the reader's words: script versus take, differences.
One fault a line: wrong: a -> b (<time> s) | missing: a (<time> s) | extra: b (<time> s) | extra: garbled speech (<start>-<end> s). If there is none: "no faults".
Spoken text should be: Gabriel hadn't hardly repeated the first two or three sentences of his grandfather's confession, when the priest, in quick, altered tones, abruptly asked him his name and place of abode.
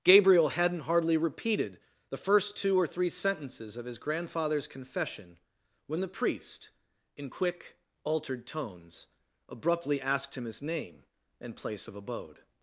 no faults